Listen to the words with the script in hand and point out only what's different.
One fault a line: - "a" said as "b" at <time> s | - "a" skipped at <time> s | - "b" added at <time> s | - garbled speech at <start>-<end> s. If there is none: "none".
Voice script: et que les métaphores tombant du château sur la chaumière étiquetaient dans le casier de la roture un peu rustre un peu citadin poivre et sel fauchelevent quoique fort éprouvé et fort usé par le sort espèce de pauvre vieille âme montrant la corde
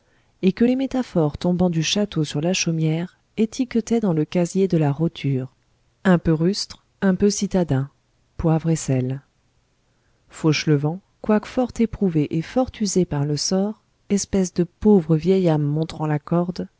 none